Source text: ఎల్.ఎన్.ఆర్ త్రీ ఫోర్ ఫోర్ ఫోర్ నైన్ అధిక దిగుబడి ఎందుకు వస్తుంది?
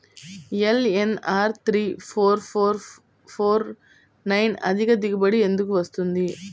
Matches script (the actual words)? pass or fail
pass